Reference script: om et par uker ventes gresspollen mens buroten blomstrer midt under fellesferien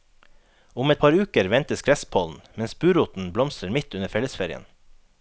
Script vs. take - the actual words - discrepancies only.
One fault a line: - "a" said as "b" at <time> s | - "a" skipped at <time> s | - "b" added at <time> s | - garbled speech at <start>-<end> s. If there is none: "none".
none